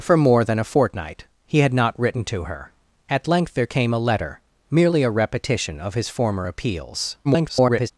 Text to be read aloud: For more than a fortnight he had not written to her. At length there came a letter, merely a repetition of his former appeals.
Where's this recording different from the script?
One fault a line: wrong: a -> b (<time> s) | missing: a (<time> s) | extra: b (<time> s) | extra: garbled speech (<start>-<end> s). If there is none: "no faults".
extra: garbled speech (7.2-7.9 s)